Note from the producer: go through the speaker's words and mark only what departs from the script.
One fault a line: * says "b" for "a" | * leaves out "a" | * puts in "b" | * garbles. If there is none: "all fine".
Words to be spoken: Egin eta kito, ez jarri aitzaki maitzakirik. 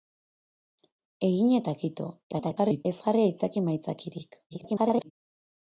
* garbles
* garbles